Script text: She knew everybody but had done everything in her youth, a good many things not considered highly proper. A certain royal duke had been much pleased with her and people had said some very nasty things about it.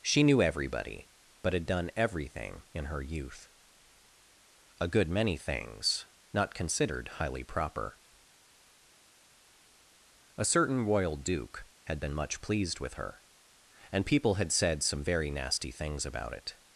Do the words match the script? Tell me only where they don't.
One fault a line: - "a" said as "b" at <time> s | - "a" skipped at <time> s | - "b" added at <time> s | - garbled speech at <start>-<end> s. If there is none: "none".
none